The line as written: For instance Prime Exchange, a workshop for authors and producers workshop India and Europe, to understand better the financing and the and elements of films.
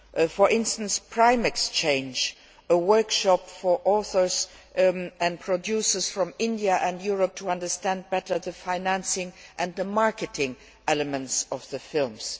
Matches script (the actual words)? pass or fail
fail